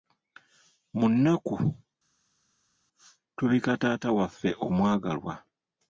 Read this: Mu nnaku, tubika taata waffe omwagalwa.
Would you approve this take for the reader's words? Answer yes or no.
yes